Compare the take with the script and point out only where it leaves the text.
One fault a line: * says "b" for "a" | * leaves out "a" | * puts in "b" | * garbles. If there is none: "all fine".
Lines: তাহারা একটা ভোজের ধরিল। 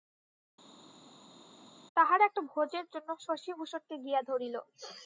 * puts in "জন্য শশিভূষণকে গিয়া"